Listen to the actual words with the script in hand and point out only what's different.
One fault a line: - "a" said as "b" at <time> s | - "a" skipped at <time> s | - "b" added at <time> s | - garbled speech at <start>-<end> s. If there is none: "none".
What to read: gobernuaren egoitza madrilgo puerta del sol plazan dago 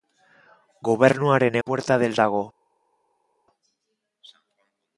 - "egoitza madrilgo" skipped at 1.6 s
- "sol plazan" skipped at 2.2 s